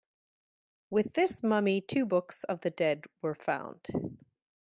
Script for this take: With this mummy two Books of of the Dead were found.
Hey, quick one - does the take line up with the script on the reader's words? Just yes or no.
no